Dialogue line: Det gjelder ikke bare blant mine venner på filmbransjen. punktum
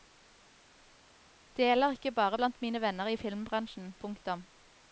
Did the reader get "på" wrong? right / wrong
wrong